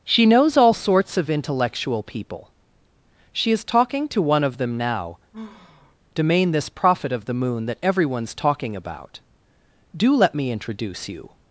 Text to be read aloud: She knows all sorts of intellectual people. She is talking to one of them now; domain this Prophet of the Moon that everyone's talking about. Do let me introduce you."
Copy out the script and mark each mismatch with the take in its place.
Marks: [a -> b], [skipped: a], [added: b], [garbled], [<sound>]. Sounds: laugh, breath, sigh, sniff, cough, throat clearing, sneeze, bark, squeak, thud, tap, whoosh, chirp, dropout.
She knows all sorts of intellectual people. She is talking to one of them now; [sigh] domain this Prophet of the Moon that everyone's talking about. Do let me introduce you."